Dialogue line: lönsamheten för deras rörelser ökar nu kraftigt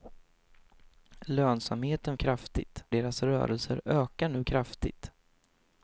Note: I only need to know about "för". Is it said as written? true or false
false